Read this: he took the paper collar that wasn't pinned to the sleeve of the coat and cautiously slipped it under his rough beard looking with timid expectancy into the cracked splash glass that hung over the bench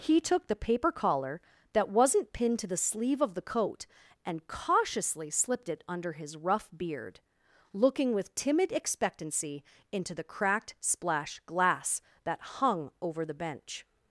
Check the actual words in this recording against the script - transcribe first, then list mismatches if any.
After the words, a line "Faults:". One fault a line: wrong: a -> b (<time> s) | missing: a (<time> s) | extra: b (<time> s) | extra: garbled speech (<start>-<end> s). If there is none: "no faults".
he took the paper collar that wasn't pinned to the sleeve of the coat and cautiously slipped it under his rough beard looking with timid expectancy into the cracked splash glass that hung over the bench
Faults:
no faults